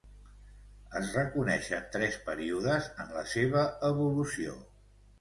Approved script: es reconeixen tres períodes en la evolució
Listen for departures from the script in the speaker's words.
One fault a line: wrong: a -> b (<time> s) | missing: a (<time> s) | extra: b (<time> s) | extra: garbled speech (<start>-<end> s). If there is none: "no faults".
extra: seva (3.4 s)